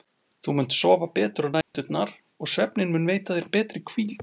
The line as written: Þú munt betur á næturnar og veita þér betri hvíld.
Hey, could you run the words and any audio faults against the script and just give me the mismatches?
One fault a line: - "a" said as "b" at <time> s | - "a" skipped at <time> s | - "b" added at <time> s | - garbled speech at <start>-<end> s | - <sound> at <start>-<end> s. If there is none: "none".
- "sofa" added at 0.8 s
- dropout at 1.6-1.7 s
- "svefninn mun" added at 2.5 s